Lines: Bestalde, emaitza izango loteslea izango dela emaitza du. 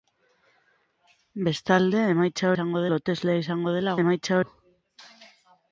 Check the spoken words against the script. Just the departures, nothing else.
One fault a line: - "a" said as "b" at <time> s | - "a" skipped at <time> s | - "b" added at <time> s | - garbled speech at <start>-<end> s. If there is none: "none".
none